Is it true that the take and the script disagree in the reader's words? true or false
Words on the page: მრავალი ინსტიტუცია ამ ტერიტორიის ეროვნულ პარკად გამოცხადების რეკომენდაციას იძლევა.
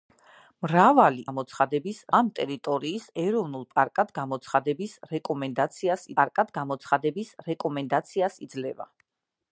true